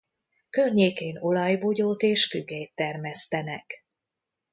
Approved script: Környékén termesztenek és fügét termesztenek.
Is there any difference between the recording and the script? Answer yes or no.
yes